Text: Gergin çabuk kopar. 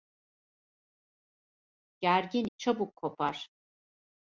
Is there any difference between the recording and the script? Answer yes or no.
no